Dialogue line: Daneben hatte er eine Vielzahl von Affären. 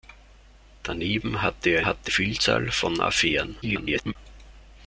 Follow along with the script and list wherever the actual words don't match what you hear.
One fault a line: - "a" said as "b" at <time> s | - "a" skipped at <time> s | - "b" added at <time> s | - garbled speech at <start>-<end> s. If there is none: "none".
- "eine" said as "hatte" at 1.9 s
- garbled speech at 3.6-4.2 s